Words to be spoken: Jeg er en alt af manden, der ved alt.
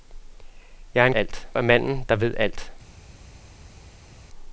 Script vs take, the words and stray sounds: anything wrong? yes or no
no